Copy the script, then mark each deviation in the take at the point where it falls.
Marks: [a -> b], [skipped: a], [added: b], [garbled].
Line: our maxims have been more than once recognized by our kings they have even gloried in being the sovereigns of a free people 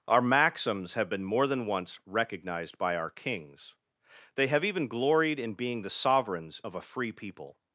our maxims have been more than once recognized by our kings they have even gloried in being the sovereigns of a free people